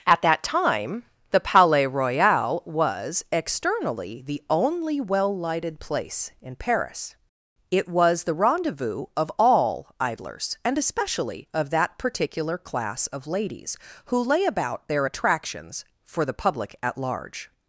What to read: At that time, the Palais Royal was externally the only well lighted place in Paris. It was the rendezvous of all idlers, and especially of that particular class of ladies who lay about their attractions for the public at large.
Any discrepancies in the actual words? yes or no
no